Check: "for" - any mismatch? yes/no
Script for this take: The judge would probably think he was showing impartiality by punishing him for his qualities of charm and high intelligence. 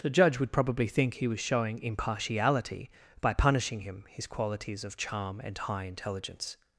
yes